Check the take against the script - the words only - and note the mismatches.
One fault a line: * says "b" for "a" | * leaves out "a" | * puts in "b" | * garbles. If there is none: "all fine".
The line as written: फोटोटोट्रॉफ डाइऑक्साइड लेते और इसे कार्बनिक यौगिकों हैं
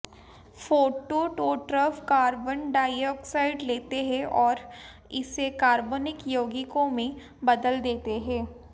* puts in "कार्बन"
* puts in "हैं"
* puts in "में बदल देते"